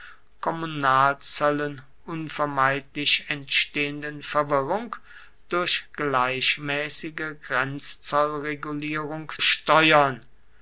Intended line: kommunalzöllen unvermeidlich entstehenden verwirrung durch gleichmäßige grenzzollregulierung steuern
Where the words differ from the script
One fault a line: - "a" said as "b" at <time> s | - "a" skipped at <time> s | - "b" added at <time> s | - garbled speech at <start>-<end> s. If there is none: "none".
none